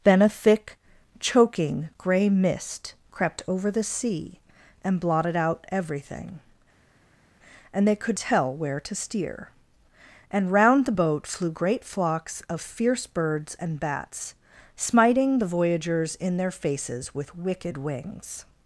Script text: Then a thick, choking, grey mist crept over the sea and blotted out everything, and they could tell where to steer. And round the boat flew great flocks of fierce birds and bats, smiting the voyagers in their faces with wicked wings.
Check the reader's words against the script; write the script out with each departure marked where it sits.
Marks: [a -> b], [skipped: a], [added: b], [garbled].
Then a thick, choking, grey mist crept over the sea and blotted out everything, and they could tell where to steer. And round the boat flew great flocks of fierce birds and bats, smiting the voyagers in their faces with wicked wings.